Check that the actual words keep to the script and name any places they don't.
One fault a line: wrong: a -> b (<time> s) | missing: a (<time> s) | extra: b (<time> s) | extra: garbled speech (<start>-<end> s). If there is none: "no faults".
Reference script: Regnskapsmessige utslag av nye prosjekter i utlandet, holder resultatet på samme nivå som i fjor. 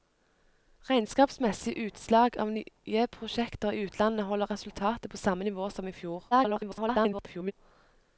extra: garbled speech (6.3-7.5 s)